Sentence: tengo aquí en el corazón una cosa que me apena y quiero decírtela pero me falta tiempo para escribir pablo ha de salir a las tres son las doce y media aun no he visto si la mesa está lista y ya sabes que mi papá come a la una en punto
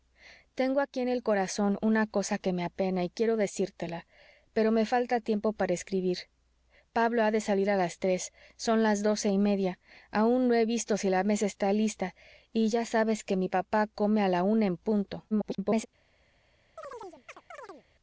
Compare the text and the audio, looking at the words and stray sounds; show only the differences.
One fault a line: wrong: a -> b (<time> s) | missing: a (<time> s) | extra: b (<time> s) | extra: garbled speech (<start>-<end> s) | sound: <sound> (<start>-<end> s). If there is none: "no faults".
extra: garbled speech (15.3-15.9 s)
sound: chirp (16.8-17.8 s)